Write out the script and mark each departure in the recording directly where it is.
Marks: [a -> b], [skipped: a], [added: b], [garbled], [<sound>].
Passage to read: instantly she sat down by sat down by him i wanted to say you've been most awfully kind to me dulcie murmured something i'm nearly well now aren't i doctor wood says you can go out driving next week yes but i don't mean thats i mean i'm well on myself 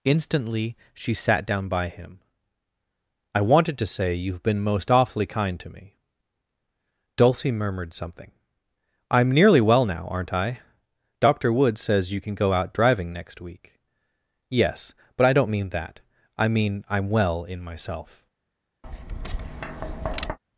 instantly she sat down by [skipped: sat down by] him i wanted to say you've been most awfully kind to me dulcie murmured something i'm nearly well now aren't i doctor wood says you can go out driving next week yes but i don't mean [thats -> that] i mean i'm well [on -> in] myself [tap]